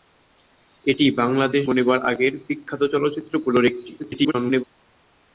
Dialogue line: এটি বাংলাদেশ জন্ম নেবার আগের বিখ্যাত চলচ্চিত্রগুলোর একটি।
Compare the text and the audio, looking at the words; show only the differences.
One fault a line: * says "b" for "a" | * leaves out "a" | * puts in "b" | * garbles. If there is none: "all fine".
* leaves out "জন্ম"
* garbles